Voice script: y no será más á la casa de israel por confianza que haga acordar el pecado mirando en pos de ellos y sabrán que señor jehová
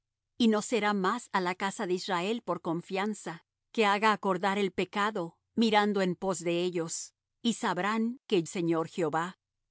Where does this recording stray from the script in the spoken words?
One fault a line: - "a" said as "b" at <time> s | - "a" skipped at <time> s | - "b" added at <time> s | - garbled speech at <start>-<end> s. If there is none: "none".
none